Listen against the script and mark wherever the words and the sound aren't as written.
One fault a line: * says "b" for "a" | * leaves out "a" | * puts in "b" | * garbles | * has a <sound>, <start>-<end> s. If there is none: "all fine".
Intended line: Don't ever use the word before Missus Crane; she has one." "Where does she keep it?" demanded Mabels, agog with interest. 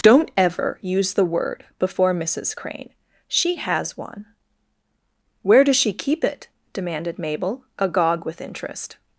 * says "Mabel" for "Mabels"